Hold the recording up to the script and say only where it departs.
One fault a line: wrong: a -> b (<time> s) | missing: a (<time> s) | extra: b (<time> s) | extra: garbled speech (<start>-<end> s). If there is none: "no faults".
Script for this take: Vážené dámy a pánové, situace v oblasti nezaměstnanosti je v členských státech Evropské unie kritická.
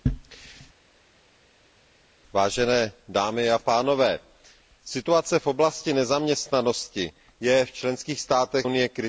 missing: Evropské (8.7 s)